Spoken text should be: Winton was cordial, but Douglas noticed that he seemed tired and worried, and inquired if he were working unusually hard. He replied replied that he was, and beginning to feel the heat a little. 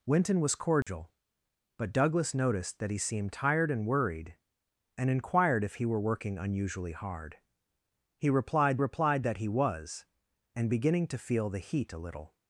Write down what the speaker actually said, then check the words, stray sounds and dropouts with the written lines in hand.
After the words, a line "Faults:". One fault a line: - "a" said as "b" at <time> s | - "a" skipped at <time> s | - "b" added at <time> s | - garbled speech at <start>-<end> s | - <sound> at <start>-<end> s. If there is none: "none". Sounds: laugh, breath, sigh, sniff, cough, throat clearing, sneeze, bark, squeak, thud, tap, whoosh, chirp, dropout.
Winton was cordial, but Douglas noticed that he seemed tired and worried, and inquired if he were working unusually hard. He replied replied that he was, and beginning to feel the heat a little.
Faults:
- dropout at 0.8-0.9 s